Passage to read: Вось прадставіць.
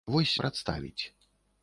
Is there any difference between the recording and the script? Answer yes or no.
no